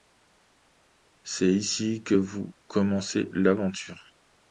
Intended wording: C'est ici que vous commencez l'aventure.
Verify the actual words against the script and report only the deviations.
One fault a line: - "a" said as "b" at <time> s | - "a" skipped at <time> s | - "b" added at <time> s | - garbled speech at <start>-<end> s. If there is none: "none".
none